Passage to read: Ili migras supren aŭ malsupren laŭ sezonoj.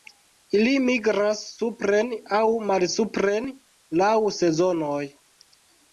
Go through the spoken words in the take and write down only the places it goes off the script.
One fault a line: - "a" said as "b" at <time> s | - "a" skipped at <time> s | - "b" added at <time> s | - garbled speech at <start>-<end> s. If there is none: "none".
none